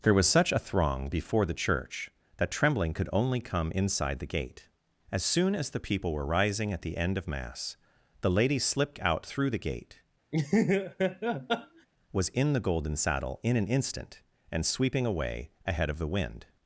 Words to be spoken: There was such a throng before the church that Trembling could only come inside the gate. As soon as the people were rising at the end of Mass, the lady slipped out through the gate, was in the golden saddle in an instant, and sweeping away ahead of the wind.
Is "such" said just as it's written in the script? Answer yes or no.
yes